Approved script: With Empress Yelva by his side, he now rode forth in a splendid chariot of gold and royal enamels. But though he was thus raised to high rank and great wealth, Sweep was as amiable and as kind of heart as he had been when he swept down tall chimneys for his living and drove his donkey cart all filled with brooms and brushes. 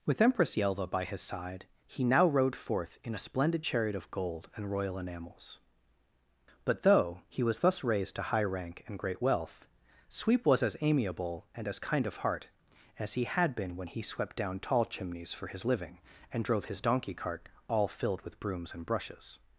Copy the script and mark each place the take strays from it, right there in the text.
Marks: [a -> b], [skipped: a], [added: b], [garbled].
With Empress Yelva by his side, he now rode forth in a splendid chariot of gold and royal enamels. But though he was thus raised to high rank and great wealth, Sweep was as amiable and as kind of heart as he had been when he swept down tall chimneys for his living and drove his donkey cart all filled with brooms and brushes.